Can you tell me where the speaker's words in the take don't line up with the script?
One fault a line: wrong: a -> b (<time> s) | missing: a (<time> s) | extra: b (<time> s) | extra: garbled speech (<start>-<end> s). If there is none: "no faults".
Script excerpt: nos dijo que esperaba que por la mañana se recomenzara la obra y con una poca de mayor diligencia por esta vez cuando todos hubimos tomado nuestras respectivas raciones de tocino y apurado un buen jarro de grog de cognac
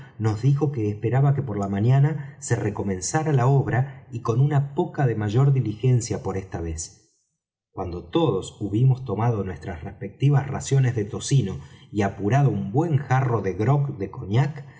no faults